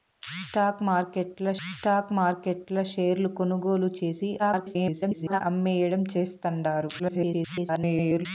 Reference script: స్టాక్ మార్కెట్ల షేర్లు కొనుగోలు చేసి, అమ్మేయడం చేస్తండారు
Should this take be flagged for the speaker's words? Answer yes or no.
yes